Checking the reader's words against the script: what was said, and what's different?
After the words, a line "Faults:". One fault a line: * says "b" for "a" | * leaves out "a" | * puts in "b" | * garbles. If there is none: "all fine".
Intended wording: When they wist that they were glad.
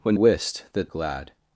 When wist that glad.
Faults:
* leaves out "they"
* leaves out "they were"